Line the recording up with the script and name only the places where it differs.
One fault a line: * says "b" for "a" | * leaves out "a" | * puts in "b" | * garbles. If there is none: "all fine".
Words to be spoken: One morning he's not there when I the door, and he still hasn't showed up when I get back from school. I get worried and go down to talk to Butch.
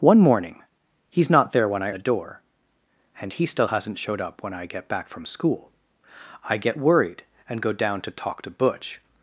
all fine